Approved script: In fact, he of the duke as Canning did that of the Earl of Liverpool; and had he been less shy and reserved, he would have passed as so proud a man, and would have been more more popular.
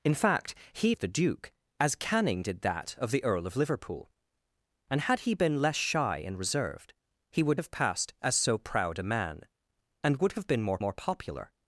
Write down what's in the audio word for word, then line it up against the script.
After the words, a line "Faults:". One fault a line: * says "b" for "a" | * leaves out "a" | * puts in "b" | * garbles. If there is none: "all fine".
In fact, he of the duke as Canning did that of the Earl of Liverpool; and had he been less shy and reserved, he would have passed as so proud a man, and would have been more more popular.
Faults:
all fine